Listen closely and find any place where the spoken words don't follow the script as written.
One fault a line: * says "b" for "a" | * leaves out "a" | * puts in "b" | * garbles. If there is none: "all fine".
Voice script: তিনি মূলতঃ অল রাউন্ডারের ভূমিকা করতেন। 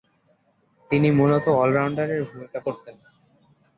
all fine